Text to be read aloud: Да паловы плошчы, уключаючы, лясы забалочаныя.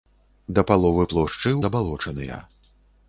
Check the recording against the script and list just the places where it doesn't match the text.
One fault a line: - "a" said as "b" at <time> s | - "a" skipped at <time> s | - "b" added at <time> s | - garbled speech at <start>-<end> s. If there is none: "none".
- "уключаючы лясы" skipped at 1.5 s